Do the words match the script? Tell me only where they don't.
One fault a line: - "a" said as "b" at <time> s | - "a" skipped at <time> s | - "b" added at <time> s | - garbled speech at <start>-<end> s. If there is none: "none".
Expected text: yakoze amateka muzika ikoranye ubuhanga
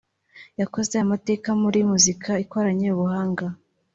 - "muri" added at 1.6 s